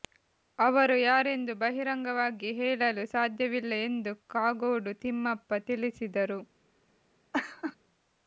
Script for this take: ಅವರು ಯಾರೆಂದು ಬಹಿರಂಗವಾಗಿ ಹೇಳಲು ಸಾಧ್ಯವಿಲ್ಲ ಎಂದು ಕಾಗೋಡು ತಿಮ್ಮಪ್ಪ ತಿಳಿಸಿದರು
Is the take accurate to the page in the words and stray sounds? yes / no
no